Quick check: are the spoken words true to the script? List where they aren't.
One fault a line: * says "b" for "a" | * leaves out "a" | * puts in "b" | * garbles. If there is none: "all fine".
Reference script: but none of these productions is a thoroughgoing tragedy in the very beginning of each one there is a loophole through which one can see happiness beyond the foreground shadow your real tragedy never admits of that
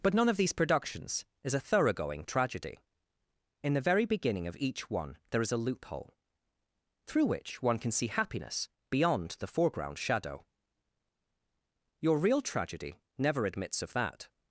all fine